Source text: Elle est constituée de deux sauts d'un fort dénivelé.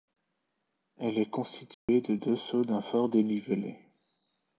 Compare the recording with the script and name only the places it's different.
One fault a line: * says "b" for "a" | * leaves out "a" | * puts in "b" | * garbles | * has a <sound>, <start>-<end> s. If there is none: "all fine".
* has a dropout, 1.7-1.9 s